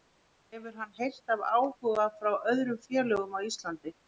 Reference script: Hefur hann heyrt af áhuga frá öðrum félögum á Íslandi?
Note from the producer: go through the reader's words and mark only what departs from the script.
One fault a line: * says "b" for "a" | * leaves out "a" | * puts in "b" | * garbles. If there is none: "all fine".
all fine